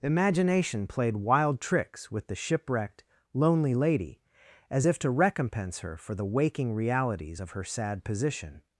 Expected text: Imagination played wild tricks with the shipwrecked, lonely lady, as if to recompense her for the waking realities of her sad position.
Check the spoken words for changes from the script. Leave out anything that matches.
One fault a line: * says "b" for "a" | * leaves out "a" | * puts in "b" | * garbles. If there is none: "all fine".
all fine